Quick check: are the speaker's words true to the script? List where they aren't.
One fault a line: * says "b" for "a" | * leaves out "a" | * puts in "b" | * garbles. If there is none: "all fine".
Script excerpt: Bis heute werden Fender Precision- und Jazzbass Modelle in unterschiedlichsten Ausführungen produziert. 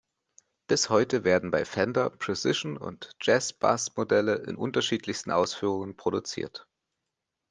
* puts in "bei"